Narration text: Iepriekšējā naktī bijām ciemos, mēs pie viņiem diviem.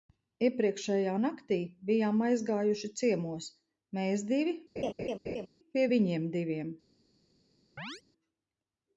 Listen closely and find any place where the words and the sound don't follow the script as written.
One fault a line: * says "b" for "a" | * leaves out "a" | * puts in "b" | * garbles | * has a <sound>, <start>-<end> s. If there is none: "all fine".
* puts in "aizgājuši"
* puts in "divi"
* has a laugh, 4.8-5.5 s
* has a chirp, 7.8-8.0 s